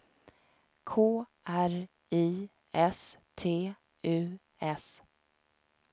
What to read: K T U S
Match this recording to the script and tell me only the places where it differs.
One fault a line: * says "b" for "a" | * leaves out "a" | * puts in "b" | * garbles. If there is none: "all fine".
* puts in "R I S"